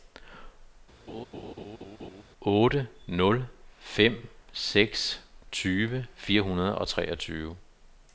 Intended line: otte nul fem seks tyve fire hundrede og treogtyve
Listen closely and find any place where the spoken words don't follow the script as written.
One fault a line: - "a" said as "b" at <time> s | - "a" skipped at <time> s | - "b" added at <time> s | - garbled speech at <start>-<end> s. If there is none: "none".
none